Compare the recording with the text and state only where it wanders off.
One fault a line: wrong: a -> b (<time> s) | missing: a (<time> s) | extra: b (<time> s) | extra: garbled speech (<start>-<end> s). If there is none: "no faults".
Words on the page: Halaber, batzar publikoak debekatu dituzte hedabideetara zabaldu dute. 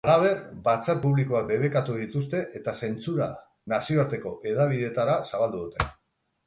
extra: eta zentsura nazioarteko (2.6 s)